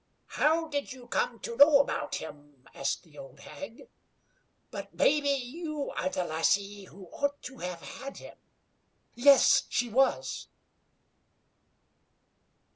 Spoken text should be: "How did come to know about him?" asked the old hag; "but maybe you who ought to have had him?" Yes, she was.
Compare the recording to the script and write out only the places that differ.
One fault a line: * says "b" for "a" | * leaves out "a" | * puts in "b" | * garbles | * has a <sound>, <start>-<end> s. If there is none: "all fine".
* puts in "you"
* puts in "are the lassie"